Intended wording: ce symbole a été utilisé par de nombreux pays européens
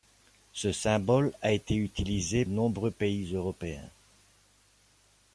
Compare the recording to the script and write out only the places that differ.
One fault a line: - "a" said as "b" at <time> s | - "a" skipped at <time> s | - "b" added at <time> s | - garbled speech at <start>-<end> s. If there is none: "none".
- "par de" skipped at 2.4 s